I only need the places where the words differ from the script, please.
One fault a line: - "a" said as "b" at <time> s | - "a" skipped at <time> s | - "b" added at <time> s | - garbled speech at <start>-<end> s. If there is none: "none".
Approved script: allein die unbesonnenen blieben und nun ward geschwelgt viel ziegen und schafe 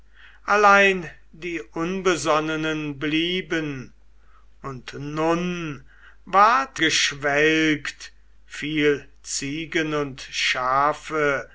none